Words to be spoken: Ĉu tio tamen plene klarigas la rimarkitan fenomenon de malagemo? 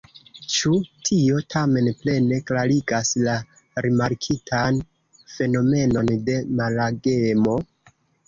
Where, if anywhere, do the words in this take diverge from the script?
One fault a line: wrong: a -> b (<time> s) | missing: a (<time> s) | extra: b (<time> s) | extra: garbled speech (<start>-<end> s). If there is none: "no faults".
no faults